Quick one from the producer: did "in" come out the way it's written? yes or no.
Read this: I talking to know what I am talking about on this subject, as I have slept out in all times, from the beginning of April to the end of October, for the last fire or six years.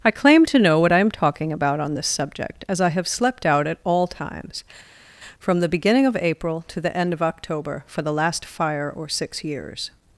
no